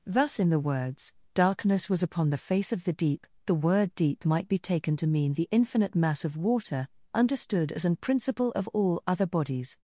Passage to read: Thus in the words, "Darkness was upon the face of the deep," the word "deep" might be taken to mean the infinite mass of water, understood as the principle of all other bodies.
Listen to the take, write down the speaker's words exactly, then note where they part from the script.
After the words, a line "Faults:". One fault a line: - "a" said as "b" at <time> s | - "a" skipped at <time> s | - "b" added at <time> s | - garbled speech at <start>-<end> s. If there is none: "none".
Thus in the words, "Darkness was upon the face of the deep," the word "deep" might be taken to mean the infinite mass of water, understood as an principle of all other bodies.
Faults:
- "the" said as "an" at 7.8 s